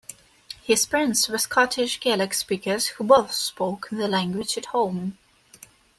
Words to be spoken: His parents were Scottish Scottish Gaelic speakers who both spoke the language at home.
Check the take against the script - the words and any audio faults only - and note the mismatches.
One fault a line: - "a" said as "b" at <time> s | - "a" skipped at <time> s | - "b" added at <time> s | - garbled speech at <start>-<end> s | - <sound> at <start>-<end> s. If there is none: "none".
- "Scottish" skipped at 2.0 s